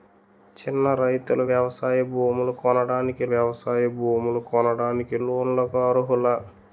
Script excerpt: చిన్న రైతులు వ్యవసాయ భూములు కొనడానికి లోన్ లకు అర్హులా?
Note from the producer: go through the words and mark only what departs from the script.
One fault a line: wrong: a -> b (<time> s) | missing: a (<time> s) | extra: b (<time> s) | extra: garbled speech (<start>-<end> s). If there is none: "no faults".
extra: వ్యవసాయ భూములు కొనడానికి (3.3 s)